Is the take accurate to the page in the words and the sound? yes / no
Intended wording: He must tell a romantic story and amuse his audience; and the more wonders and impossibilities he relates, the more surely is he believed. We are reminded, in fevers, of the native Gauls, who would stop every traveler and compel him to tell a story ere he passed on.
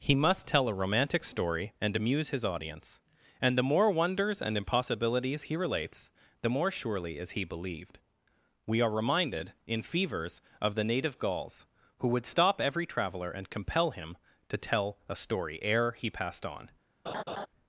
no